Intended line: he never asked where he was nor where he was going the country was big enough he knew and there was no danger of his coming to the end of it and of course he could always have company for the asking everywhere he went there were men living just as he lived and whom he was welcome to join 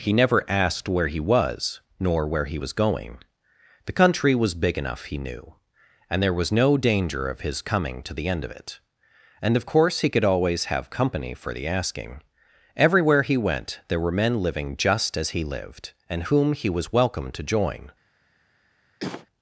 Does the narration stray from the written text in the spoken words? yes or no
no